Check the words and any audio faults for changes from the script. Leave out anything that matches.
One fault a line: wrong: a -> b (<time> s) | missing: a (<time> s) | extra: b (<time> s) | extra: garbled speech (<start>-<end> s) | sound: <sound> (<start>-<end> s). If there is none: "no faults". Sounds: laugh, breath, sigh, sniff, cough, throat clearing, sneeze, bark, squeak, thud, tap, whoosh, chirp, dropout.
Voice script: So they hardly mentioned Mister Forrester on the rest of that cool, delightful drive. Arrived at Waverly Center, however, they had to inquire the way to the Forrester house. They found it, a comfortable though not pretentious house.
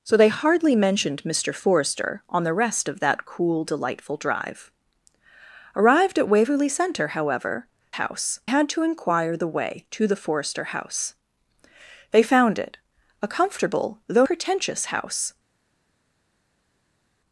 wrong: they -> house (7.9 s)
missing: not (14.3 s)